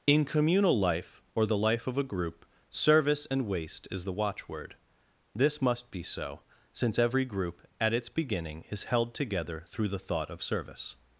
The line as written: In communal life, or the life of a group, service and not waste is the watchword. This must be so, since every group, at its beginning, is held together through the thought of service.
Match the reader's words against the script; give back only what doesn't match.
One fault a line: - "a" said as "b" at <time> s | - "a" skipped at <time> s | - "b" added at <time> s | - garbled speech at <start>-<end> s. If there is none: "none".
- "not" skipped at 3.5 s